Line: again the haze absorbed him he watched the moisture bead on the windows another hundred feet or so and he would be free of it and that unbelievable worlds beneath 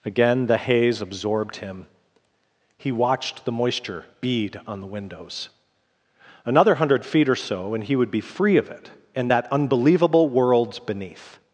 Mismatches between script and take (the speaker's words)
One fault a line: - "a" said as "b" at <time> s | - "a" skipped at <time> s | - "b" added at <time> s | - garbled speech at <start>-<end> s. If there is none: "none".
none